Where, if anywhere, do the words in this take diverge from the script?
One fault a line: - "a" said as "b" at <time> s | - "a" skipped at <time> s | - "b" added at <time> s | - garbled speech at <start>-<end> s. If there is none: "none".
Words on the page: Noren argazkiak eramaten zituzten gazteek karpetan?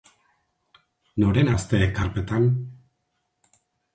- "argazkiak eramaten zituzten" skipped at 1.5 s